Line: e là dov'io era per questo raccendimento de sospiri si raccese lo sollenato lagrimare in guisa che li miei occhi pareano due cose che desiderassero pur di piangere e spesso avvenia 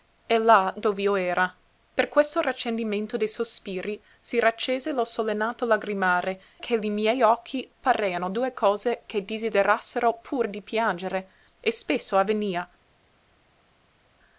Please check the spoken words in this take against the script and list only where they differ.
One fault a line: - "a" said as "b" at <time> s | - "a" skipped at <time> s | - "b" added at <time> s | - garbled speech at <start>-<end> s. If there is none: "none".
- "in guisa" skipped at 6.4 s